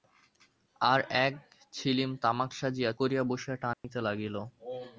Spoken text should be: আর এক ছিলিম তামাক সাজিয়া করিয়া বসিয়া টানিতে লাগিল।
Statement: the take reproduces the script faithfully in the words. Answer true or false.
true